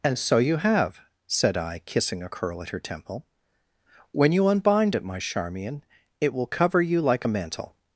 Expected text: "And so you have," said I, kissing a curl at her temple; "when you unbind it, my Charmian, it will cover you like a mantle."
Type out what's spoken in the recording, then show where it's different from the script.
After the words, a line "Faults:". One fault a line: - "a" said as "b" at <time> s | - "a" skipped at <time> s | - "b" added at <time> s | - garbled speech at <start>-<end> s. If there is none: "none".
"And so you have," said I, kissing a curl at her temple; "when you unbind it, my Charmian, it will cover you like a mantle."
Faults:
none